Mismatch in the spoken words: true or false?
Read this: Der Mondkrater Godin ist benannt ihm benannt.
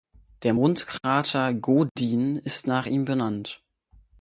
true